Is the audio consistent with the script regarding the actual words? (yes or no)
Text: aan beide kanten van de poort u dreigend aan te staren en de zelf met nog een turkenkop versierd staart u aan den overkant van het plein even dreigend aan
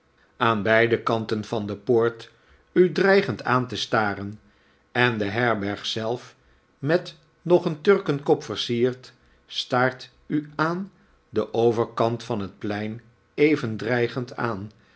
no